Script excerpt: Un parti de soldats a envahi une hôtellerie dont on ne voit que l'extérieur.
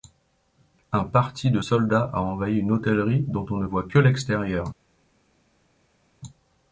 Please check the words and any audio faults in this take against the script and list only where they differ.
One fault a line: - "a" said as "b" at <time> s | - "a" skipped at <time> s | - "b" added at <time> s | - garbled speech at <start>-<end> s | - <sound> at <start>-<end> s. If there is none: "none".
none